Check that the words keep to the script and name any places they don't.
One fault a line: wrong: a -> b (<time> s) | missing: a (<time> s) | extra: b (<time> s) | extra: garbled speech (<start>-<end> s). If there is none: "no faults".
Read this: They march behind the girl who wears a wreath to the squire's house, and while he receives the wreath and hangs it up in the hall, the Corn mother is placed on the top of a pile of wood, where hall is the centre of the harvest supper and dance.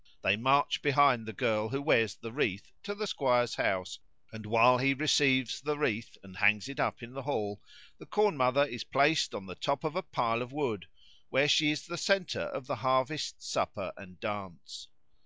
wrong: a -> the (2.1 s)
wrong: hall -> she (11.5 s)